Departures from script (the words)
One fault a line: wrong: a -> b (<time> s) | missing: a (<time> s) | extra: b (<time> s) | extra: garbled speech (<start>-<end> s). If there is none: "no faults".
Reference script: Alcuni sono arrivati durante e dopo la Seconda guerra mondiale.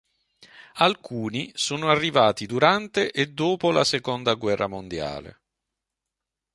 no faults